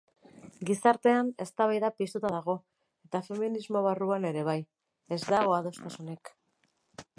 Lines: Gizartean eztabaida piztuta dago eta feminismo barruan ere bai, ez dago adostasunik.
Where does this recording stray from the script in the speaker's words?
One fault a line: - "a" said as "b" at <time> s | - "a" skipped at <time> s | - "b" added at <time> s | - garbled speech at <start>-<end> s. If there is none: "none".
none